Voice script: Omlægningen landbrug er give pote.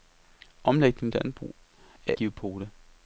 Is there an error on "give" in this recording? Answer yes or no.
no